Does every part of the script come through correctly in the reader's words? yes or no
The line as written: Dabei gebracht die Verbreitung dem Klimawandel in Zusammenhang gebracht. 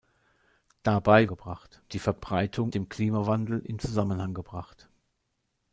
yes